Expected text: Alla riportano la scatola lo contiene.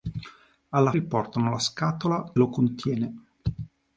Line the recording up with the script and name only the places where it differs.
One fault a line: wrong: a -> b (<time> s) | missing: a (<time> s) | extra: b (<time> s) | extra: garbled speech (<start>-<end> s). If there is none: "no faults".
no faults